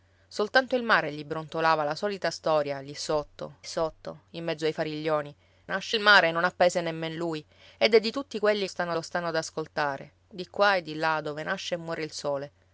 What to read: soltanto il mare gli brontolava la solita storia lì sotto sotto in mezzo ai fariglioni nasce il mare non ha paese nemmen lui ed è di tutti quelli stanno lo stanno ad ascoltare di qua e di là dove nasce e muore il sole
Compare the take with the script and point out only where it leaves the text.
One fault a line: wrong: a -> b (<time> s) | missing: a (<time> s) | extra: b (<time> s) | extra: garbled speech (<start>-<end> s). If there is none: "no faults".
no faults